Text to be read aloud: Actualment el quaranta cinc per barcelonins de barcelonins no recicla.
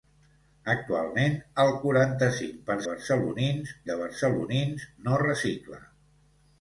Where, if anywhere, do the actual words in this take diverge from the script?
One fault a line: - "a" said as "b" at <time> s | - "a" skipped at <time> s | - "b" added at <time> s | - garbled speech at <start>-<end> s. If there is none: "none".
none